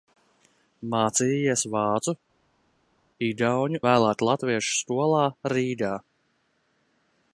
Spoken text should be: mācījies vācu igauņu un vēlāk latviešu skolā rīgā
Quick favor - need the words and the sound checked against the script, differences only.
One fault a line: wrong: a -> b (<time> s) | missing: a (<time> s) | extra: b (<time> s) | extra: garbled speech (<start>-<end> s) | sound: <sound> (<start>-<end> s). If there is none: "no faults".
missing: un (3.8 s)